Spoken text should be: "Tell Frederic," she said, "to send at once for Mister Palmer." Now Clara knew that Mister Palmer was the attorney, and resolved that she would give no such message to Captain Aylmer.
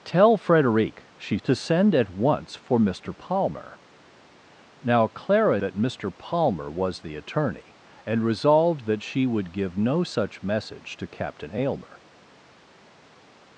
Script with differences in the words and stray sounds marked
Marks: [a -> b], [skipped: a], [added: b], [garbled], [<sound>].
"Tell Frederic," she [skipped: said,] "to send at once for Mister Palmer." Now Clara [skipped: knew] that Mister Palmer was the attorney, and resolved that she would give no such message to Captain Aylmer.